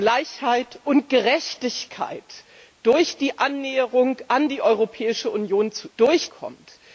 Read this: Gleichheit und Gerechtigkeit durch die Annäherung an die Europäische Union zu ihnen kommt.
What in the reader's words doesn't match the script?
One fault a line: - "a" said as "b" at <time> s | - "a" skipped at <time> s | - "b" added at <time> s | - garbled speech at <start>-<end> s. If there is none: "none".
- "ihnen" said as "durch" at 5.9 s